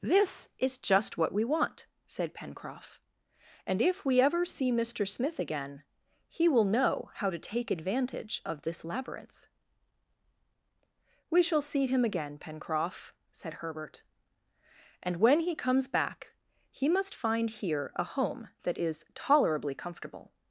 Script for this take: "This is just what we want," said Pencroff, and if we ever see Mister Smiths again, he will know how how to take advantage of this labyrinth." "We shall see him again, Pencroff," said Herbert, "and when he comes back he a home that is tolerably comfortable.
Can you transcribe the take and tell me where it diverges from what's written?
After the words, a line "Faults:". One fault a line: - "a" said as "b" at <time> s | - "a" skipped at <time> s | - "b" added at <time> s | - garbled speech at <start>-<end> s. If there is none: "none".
"This is just what we want," said Pencroff, and if we ever see Mister Smith again, he will know how to take advantage of this labyrinth." "We shall see him again, Pencroff," said Herbert, "and when he comes back he must find here a home that is tolerably comfortable.
Faults:
- "Smiths" said as "Smith" at 5.0 s
- "how" skipped at 7.3 s
- "must find here" added at 16.9 s